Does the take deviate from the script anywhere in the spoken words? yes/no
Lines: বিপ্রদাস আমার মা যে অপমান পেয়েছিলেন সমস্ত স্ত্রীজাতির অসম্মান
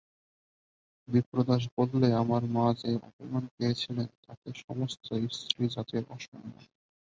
yes